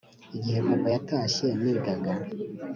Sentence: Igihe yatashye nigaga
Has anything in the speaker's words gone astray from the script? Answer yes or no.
yes